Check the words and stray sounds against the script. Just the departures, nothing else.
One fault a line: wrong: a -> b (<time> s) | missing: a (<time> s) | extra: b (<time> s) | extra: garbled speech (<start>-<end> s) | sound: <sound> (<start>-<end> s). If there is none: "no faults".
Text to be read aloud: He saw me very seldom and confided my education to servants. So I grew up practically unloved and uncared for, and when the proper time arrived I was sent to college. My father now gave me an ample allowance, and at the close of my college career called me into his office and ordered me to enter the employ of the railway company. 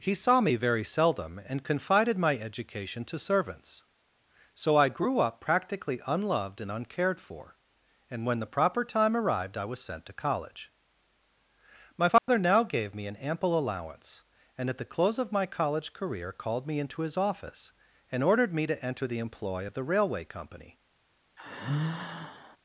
sound: dropout (12.2-12.3 s)
sound: sigh (21.4-22.6 s)